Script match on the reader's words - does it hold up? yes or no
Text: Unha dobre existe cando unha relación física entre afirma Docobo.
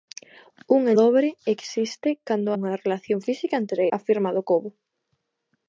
yes